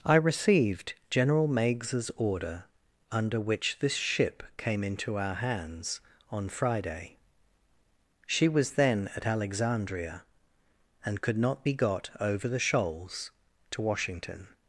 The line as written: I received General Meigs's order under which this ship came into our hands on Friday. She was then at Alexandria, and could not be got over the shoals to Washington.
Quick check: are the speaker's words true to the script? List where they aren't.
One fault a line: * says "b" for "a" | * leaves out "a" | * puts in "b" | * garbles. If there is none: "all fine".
all fine